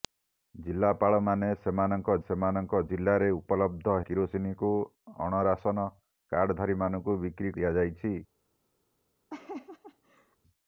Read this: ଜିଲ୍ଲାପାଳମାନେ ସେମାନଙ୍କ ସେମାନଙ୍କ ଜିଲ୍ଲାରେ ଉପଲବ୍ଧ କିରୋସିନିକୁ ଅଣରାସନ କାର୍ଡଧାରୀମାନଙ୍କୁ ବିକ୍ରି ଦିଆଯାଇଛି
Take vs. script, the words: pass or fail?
pass